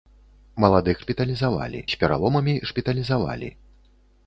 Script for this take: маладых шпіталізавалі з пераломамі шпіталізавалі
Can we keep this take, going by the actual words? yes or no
yes